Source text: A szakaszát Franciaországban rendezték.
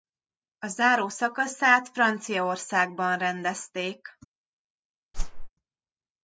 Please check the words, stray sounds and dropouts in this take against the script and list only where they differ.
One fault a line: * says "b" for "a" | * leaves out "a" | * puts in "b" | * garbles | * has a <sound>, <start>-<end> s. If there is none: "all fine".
* puts in "záró"
* has a whoosh, 5.1-5.5 s